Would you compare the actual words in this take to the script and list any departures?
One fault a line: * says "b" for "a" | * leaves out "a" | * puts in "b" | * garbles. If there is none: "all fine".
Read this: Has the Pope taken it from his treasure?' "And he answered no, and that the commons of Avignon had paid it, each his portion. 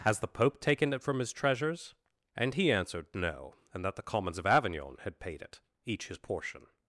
* says "treasures" for "treasure"